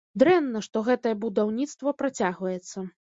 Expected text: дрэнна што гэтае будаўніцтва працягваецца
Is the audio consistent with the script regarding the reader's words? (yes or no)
yes